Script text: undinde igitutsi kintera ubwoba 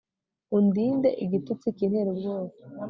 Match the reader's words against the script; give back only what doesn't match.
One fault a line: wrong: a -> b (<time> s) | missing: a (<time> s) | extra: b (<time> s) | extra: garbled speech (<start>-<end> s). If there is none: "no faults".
no faults